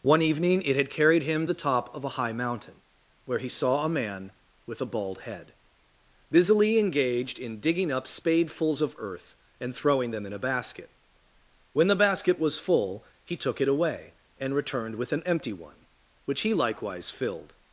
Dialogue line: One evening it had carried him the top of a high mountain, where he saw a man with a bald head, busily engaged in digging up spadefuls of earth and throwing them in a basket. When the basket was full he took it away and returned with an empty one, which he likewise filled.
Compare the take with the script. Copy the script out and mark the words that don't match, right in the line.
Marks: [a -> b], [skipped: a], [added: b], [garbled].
One evening it had carried him the top of a high mountain, where he saw a man with a bald head, busily engaged in digging up spadefuls of earth and throwing them in a basket. When the basket was full he took it away and returned with an empty one, which he likewise filled.